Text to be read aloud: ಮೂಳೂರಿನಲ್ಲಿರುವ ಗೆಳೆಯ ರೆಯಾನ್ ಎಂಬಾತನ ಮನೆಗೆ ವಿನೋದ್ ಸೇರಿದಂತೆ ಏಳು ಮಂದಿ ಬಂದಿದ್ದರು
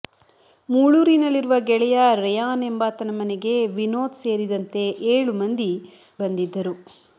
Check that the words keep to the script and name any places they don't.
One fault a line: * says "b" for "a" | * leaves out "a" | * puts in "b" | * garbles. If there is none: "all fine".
all fine